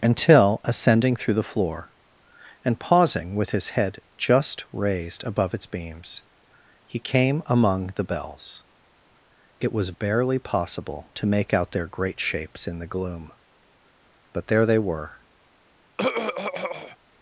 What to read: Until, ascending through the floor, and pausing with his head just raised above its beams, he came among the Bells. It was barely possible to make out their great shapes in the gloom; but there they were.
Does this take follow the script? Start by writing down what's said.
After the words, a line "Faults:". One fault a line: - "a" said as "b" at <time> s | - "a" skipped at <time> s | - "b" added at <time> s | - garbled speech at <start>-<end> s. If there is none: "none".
Until, ascending through the floor, and pausing with his head just raised above its beams, he came among the Bells. It was barely possible to make out their great shapes in the gloom; but there they were.
Faults:
none